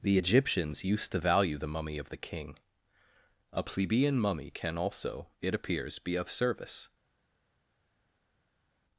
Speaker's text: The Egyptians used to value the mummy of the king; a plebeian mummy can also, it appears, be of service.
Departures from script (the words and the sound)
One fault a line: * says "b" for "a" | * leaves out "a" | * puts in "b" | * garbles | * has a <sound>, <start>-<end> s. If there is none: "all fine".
all fine